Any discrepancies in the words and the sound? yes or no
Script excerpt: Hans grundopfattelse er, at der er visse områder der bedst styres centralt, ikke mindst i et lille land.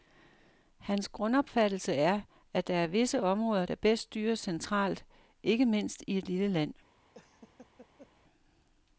yes